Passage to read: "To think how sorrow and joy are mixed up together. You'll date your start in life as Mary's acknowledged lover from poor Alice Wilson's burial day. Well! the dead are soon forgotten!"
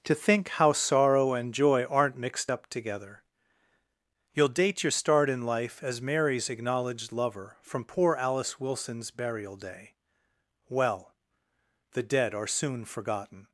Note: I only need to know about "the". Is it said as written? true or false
true